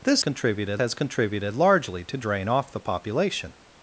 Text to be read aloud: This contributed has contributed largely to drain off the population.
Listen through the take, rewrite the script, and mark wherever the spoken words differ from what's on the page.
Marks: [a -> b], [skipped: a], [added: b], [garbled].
This contributed has contributed largely to drain off the population.